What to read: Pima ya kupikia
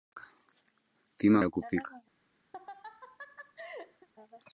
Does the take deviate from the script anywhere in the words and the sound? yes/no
yes